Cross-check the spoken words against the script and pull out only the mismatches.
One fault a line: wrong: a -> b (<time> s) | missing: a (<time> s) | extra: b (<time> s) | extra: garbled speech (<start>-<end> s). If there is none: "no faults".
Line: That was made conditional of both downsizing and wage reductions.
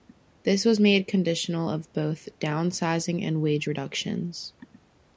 wrong: That -> This (0.5 s)